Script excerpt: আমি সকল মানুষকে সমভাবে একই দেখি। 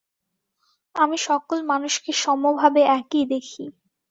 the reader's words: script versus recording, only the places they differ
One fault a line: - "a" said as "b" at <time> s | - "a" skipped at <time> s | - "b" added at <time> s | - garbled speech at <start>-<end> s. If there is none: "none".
none